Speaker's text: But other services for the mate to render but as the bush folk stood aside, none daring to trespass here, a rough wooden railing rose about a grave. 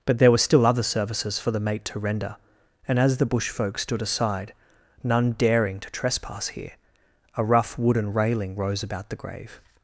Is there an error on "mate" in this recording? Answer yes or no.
no